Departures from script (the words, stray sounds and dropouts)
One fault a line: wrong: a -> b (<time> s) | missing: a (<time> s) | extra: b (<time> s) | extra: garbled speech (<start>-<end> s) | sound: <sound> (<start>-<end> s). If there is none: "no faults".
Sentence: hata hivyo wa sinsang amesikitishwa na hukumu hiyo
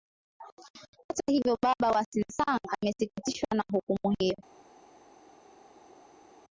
extra: baba (1.6 s)